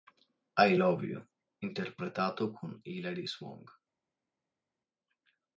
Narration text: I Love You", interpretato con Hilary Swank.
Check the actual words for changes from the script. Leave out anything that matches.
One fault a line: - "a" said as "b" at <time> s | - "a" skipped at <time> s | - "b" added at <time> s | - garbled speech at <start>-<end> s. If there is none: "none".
none